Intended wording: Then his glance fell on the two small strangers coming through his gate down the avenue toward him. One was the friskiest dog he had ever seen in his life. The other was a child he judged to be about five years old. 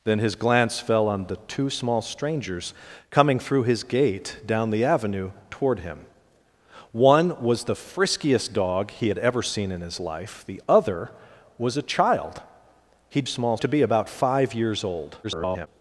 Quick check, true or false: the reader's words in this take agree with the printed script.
false